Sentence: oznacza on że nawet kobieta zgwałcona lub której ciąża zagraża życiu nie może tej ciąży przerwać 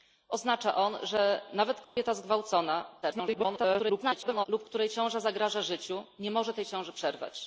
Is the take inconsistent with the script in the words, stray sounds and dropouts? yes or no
yes